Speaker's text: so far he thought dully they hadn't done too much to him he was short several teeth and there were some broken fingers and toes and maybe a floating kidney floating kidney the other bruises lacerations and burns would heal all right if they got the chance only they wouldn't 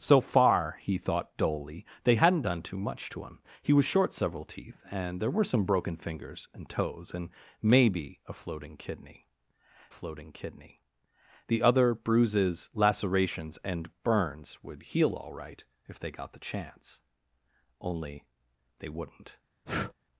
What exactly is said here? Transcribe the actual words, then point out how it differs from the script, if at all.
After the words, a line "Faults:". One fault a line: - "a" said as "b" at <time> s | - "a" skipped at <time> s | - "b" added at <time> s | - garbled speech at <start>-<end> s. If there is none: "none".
so far he thought dully they hadn't done too much to him he was short several teeth and there were some broken fingers and toes and maybe a floating kidney floating kidney the other bruises lacerations and burns would heal all right if they got the chance only they wouldn't
Faults:
none